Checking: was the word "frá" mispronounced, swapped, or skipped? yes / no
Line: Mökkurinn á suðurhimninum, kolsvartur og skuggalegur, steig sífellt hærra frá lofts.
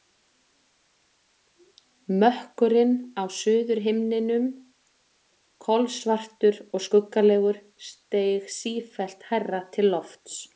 yes